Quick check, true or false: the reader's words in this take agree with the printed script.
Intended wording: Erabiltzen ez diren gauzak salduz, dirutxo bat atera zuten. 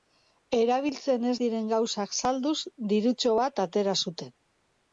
true